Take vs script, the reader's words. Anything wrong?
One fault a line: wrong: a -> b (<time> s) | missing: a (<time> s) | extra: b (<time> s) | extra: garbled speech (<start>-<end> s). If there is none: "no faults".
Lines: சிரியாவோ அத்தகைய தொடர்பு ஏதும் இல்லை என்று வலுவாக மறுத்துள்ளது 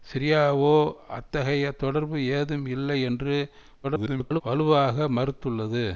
extra: garbled speech (3.8-4.4 s)